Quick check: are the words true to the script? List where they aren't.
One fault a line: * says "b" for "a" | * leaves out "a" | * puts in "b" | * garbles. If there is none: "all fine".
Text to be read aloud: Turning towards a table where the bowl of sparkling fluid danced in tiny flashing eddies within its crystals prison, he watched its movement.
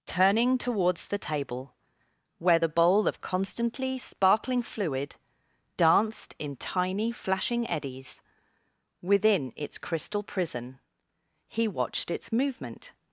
* says "the" for "a"
* puts in "constantly"
* says "crystal" for "crystals"